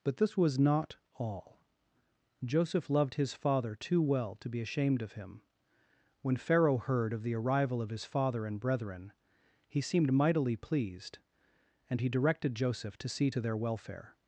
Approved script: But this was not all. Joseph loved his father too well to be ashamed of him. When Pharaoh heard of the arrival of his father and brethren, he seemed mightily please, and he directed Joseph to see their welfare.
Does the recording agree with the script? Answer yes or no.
no